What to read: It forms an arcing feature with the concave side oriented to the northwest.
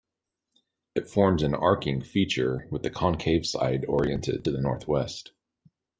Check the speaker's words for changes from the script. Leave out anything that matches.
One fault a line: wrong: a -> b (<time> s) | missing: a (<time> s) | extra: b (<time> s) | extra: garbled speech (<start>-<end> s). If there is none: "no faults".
no faults